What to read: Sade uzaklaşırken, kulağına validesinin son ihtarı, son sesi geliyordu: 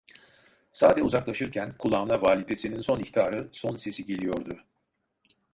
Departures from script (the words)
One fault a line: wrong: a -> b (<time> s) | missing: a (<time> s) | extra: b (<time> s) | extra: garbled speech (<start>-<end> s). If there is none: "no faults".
no faults